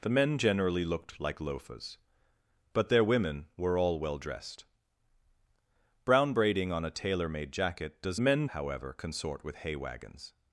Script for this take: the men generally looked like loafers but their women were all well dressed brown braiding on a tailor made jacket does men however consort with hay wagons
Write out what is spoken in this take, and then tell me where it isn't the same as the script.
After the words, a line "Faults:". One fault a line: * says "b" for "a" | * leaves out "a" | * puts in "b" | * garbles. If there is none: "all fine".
the men generally looked like loafers but their women were all well dressed brown braiding on a tailor made jacket does men however consort with hay wagons
Faults:
all fine